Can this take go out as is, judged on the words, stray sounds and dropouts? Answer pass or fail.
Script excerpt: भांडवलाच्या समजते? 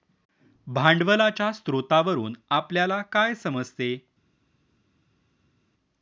fail